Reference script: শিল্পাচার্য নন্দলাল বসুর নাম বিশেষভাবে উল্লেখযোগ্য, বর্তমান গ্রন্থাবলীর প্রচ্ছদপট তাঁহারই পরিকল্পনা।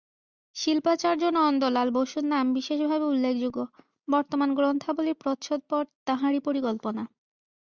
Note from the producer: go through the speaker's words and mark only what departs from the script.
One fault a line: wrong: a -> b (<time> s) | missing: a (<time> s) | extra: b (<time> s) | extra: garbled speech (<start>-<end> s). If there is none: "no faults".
no faults